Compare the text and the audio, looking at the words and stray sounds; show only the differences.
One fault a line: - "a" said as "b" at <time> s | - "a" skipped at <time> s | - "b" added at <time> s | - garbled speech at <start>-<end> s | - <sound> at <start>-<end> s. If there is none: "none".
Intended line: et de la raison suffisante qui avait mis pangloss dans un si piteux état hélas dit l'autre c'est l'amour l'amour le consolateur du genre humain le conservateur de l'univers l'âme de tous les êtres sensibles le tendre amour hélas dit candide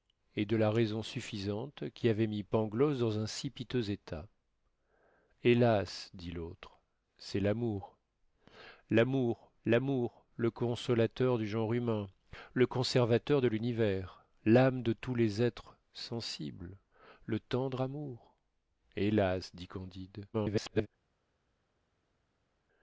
- "l'amour" added at 9.6 s
- garbled speech at 20.3-20.9 s